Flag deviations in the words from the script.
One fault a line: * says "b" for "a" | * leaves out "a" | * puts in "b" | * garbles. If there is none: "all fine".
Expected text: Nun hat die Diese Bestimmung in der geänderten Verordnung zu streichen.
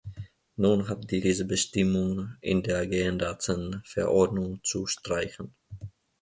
all fine